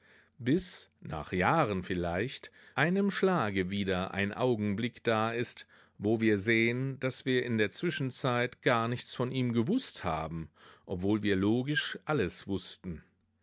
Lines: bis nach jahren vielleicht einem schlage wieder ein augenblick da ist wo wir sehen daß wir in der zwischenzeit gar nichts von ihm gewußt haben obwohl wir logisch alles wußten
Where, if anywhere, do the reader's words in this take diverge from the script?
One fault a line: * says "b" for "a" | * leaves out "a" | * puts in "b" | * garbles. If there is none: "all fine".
all fine